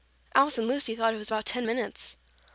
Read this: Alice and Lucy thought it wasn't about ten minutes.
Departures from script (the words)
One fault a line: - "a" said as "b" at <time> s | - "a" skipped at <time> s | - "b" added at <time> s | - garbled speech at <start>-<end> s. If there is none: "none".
- "wasn't" said as "was" at 1.2 s